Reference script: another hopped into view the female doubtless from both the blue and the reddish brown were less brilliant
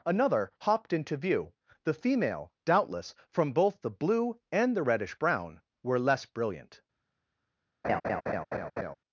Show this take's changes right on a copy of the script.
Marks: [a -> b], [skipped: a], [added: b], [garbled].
another hopped into view the female doubtless from both the blue and the reddish brown were less brilliant